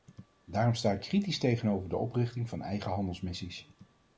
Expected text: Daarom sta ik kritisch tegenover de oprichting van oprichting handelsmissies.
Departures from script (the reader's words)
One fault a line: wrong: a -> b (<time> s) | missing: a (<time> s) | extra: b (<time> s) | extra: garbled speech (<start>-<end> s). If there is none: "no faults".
wrong: oprichting -> eigen (2.6 s)